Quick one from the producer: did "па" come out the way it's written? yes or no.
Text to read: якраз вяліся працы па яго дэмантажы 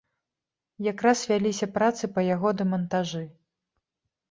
yes